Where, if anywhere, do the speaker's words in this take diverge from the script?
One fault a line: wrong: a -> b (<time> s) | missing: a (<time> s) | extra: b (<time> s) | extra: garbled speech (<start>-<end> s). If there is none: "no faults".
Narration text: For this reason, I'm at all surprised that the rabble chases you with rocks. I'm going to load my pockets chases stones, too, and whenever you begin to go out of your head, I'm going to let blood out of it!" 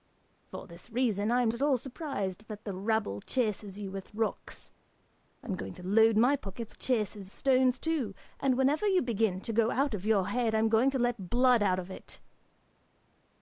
no faults